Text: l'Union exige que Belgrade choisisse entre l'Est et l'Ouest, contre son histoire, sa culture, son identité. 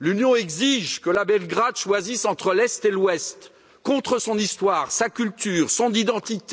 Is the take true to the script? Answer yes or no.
yes